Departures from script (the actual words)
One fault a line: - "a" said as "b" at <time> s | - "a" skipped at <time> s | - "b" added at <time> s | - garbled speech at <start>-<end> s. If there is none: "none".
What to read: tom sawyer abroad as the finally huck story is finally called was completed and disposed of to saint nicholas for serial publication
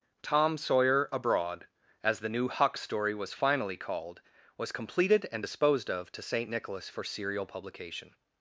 - "finally" said as "new" at 2.3 s
- "is" said as "was" at 3.1 s